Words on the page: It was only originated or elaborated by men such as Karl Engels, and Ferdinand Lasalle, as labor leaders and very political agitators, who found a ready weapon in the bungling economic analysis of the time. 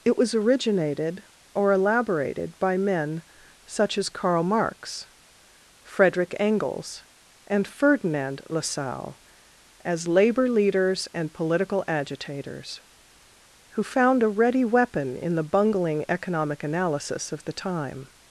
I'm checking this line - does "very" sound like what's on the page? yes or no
no